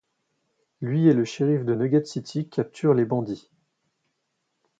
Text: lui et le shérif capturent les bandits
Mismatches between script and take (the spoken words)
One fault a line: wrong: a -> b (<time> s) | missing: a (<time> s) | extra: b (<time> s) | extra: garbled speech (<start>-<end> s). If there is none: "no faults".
extra: de nugget city (1.6 s)